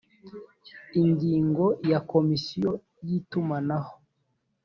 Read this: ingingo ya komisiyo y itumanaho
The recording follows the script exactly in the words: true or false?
true